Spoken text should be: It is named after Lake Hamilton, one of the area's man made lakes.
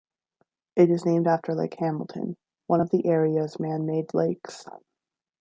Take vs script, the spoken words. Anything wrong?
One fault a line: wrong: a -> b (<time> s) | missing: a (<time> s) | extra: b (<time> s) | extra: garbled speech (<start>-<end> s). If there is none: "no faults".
no faults